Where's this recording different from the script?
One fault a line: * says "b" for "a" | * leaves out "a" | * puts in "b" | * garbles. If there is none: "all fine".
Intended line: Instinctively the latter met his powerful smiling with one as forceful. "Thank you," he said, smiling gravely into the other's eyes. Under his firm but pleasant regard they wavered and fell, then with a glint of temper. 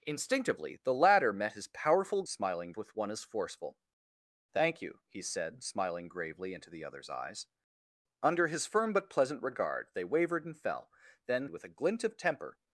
all fine